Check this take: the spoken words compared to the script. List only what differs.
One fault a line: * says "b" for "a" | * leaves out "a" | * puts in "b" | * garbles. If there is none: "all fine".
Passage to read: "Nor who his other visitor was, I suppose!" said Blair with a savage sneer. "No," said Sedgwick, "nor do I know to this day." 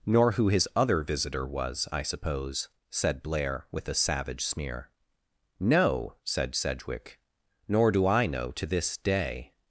all fine